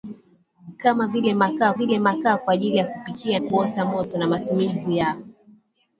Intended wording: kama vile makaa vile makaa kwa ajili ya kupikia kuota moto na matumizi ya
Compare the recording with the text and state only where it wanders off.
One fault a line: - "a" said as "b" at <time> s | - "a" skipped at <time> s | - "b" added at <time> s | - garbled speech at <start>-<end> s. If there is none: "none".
none